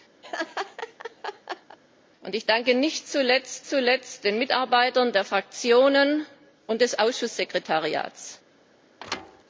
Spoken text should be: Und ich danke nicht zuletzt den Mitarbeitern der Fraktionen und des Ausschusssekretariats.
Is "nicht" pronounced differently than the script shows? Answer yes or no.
no